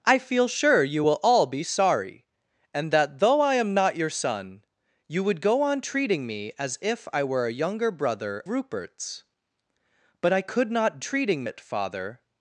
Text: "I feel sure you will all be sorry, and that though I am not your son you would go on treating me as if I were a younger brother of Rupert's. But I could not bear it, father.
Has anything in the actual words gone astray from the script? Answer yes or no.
yes